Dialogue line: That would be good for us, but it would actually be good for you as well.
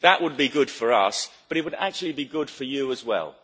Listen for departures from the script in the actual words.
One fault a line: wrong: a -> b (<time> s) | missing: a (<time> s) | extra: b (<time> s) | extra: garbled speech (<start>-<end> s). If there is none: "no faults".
no faults